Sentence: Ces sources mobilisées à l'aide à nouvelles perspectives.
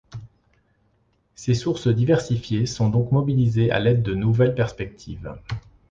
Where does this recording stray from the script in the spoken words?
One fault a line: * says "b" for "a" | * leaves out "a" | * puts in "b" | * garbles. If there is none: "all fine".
* puts in "diversifiées sont donc"
* says "de" for "à"